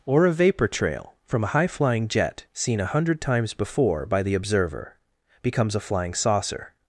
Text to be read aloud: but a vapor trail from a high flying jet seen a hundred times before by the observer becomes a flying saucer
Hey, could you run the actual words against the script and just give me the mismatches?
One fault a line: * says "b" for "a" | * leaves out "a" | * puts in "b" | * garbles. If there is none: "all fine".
* says "or" for "but"